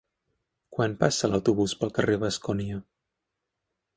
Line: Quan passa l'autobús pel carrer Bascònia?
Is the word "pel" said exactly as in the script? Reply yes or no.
yes